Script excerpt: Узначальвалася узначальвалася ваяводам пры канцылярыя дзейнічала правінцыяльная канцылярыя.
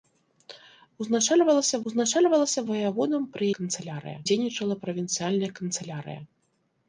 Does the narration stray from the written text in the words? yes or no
no